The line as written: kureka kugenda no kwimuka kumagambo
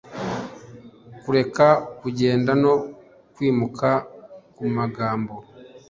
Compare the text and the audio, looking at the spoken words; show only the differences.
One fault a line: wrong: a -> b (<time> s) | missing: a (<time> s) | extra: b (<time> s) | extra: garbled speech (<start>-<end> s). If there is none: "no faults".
no faults